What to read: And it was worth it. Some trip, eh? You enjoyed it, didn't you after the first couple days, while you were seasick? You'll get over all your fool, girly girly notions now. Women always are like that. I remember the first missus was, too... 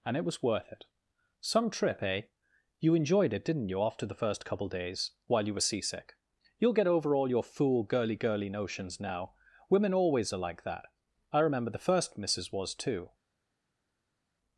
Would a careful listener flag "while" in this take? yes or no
no